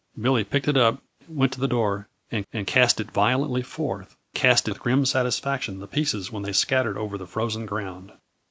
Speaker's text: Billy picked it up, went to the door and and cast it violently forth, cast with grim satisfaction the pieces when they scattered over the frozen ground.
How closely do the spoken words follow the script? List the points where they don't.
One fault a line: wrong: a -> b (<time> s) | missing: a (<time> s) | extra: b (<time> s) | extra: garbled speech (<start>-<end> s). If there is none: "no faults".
no faults